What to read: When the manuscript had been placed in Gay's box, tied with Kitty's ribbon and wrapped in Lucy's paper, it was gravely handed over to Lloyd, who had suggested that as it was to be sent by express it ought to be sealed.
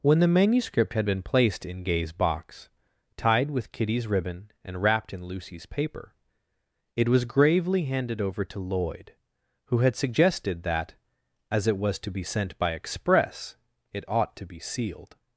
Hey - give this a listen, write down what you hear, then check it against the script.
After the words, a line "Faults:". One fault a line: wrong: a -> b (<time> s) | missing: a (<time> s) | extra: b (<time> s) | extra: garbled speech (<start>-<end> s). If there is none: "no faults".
When the manuscript had been placed in Gay's box, tied with Kitty's ribbon and wrapped in Lucy's paper, it was gravely handed over to Lloyd, who had suggested that as it was to be sent by express it ought to be sealed.
Faults:
no faults